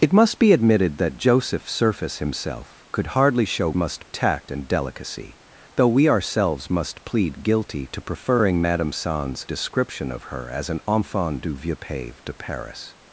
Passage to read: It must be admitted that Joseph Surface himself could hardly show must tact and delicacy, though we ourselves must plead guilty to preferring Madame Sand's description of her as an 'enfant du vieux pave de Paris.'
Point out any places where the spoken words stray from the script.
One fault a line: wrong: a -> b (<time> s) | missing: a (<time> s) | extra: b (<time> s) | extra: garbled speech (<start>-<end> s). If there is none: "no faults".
no faults